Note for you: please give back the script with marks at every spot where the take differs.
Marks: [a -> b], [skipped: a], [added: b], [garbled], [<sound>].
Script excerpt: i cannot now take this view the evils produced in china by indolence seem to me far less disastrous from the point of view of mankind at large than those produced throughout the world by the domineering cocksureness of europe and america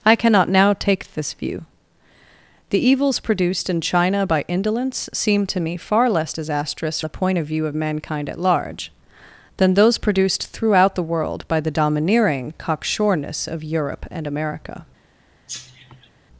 i cannot now take this view the evils produced in china by indolence seem to me far less disastrous [skipped: from] the point of view of mankind at large than those produced throughout the world by the domineering cocksureness of europe and america [cough]